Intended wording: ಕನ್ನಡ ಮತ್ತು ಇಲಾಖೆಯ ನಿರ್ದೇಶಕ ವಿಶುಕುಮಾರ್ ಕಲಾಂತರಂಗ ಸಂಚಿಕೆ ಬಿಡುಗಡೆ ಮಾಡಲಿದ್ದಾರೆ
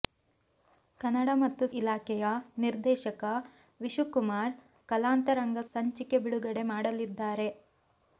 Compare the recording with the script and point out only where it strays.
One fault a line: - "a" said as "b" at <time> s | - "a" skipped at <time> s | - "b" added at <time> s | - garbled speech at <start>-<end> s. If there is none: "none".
none